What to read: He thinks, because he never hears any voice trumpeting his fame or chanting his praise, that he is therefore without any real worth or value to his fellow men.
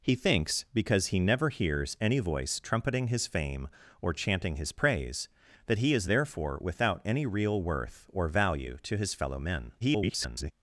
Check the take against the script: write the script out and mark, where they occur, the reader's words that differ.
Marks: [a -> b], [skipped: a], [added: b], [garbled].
He thinks, because he never hears any voice trumpeting his fame or chanting his praise, that he is therefore without any real worth or value to his fellow men. [garbled]